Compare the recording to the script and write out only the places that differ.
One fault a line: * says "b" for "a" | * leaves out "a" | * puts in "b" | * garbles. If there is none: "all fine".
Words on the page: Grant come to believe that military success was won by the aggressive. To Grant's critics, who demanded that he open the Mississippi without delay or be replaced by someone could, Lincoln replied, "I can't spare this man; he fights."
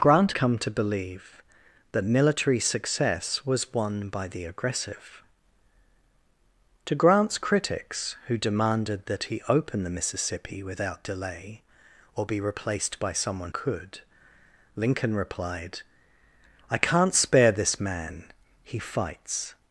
all fine